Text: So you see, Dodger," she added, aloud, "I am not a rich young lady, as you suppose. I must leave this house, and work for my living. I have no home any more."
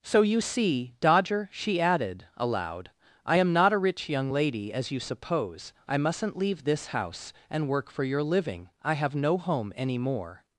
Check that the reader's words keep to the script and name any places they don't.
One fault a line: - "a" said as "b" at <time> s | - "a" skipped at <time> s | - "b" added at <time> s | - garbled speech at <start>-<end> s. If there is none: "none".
- "must" said as "mustn't" at 6.0 s
- "my" said as "your" at 8.0 s